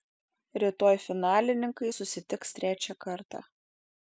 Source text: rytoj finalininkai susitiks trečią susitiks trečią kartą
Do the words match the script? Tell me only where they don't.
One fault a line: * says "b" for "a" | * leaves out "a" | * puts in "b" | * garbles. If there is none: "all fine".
* leaves out "susitiks trečią"